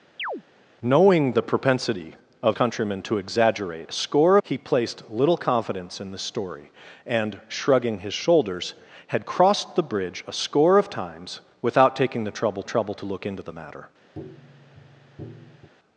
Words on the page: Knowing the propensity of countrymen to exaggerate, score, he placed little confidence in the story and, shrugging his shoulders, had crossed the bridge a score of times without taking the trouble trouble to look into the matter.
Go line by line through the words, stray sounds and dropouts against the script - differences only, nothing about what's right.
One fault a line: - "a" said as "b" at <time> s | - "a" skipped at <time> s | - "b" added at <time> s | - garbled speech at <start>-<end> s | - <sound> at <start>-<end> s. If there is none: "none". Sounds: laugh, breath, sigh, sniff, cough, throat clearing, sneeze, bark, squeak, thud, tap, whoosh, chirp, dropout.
- chirp at 0.2-0.4 s
- tap at 14.1-15.7 s